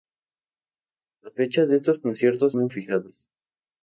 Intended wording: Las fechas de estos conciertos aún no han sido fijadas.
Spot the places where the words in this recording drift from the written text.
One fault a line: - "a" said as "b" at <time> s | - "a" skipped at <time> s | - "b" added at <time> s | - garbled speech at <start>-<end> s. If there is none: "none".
- "aún" skipped at 2.6 s
- "sido" skipped at 2.7 s